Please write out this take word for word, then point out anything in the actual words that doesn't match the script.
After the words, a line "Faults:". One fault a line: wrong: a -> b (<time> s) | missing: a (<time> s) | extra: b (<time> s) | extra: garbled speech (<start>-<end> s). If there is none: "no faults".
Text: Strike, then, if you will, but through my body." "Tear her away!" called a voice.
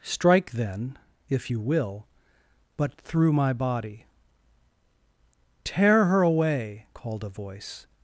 Strike, then, if you will, but through my body." "Tear her away!" called a voice.
Faults:
no faults